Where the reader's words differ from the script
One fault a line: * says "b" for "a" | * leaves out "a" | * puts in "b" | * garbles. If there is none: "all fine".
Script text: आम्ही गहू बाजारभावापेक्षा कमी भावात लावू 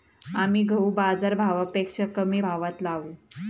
all fine